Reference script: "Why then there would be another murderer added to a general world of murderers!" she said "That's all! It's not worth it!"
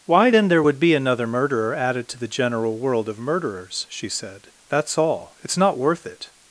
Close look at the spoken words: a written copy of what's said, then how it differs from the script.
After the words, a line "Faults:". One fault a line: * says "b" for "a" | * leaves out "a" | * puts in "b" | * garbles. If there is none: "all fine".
"Why then there would be another murderer added to the general world of murderers!" she said "That's all! It's not worth it!"
Faults:
* says "the" for "a"